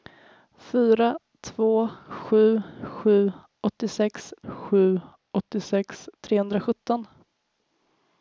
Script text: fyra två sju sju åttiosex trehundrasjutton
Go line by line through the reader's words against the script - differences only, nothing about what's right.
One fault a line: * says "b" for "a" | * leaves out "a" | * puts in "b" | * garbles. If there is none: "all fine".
* puts in "sju åttiosex"